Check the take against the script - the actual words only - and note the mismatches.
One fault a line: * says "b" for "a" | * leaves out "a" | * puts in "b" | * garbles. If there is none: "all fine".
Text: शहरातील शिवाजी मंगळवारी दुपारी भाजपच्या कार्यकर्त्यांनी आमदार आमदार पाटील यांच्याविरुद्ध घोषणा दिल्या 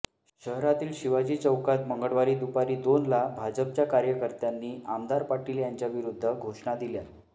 * puts in "चौकात"
* puts in "दोनला"
* leaves out "आमदार"